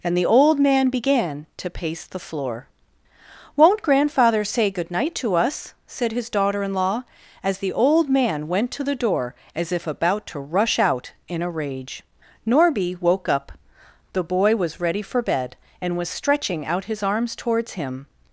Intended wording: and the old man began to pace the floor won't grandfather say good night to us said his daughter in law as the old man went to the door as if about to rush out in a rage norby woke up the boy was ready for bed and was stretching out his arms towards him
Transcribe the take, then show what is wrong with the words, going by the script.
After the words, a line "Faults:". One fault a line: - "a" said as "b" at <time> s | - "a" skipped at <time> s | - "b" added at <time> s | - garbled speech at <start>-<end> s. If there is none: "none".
and the old man began to pace the floor won't grandfather say good night to us said his daughter in law as the old man went to the door as if about to rush out in a rage norby woke up the boy was ready for bed and was stretching out his arms towards him
Faults:
none